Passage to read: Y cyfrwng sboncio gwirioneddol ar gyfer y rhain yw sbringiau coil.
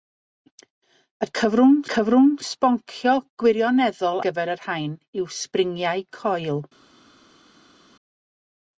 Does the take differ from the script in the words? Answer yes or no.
yes